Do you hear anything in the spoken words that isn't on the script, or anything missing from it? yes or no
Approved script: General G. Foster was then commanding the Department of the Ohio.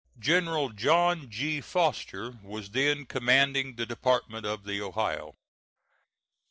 yes